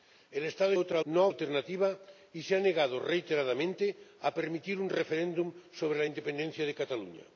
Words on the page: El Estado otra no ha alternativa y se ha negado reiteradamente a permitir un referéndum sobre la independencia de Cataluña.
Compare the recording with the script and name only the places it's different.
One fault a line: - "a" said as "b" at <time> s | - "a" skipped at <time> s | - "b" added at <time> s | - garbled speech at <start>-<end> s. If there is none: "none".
none